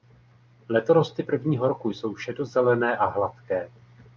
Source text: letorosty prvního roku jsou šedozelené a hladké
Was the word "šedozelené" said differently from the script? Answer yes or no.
no